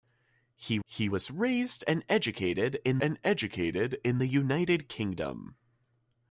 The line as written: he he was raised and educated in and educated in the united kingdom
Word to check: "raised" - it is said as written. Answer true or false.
true